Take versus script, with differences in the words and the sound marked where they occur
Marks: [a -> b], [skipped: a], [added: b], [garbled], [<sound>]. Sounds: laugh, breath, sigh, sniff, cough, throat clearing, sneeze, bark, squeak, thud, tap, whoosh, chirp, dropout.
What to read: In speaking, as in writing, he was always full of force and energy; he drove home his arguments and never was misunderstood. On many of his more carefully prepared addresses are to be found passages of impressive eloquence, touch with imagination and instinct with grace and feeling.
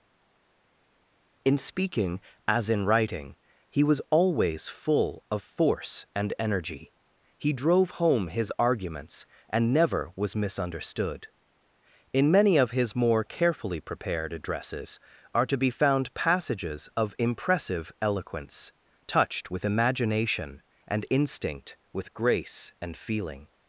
In speaking, as in writing, he was always full of force and energy; he drove home his arguments and never was misunderstood. [On -> In] many of his more carefully prepared addresses are to be found passages of impressive eloquence, [touch -> touched] with imagination and instinct with grace and feeling.